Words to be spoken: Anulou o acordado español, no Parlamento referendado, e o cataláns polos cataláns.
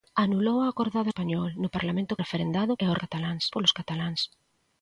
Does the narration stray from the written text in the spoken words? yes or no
no